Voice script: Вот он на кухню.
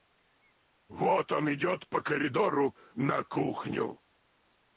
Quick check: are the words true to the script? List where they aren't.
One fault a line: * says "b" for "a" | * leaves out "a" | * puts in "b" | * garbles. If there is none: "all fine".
* puts in "идет по коридору"